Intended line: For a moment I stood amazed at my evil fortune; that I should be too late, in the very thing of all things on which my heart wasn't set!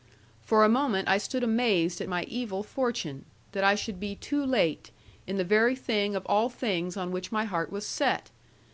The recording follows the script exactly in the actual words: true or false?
false